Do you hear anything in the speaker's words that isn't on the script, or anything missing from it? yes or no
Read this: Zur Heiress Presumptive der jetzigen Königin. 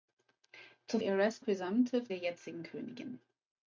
no